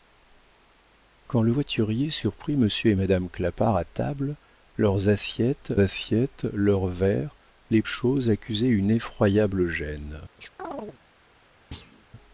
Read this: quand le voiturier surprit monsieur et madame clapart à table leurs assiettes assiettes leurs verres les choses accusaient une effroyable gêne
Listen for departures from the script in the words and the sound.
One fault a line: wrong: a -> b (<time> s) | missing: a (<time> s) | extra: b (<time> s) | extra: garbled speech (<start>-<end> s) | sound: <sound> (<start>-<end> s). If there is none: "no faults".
sound: chirp (10.4-11.0 s)
sound: thud (11.7-12.0 s)